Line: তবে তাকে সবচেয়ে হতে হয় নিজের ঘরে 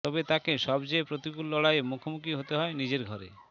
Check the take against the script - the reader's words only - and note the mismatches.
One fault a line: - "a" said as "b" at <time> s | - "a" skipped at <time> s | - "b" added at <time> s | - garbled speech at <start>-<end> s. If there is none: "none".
- "প্রতিকূল লড়াইয়ের মুখোমুখি" added at 1.0 s